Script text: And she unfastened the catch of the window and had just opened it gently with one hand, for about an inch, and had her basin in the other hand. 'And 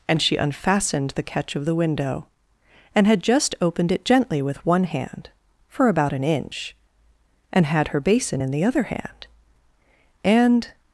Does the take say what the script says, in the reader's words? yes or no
yes